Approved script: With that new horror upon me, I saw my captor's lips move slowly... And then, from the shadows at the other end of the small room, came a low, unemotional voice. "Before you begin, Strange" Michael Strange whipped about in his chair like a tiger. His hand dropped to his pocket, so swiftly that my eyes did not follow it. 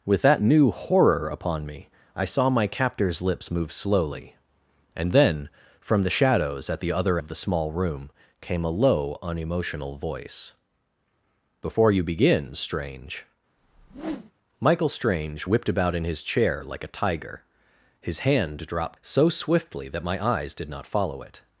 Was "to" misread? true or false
true